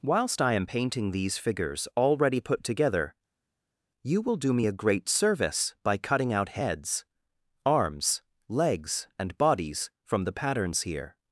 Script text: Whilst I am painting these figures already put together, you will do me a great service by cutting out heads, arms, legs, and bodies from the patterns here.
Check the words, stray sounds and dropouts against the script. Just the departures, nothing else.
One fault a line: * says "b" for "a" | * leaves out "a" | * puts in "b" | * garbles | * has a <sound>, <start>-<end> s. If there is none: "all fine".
all fine